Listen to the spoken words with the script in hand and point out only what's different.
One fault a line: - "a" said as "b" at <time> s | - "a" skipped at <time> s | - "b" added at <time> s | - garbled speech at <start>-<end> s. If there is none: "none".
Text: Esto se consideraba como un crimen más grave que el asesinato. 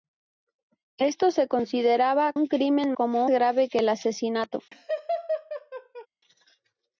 - "como" skipped at 2.3 s
- "más" said as "como" at 2.9 s